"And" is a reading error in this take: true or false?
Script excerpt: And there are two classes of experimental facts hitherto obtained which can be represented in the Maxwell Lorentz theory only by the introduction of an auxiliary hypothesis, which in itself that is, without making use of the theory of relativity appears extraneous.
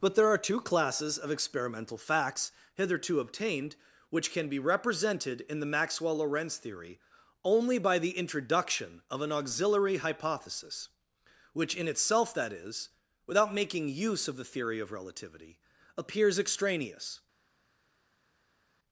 true